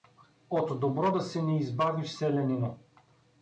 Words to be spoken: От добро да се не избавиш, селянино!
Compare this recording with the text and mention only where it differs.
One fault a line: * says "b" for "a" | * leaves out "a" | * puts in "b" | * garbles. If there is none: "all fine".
all fine